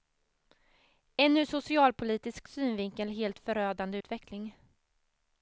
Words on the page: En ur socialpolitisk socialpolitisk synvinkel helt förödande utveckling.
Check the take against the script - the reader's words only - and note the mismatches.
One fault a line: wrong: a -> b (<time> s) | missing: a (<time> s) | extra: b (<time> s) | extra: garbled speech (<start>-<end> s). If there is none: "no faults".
missing: socialpolitisk (2.5 s)